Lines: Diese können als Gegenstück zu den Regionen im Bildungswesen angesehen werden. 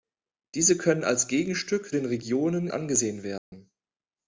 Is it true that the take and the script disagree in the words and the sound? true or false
true